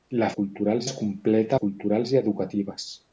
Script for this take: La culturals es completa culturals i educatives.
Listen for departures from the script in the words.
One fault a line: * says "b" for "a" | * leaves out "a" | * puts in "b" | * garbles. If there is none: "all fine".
all fine